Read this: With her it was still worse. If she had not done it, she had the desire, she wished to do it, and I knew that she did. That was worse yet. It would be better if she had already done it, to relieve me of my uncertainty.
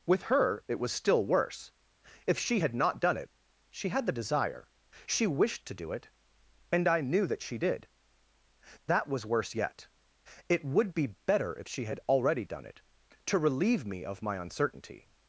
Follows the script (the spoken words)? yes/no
yes